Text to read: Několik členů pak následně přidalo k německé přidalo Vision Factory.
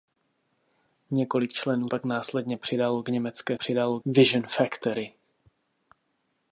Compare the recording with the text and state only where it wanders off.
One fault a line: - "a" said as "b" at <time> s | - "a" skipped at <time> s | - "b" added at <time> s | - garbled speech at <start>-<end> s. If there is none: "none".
none